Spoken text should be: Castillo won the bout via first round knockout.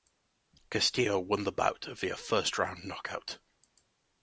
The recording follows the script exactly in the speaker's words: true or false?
true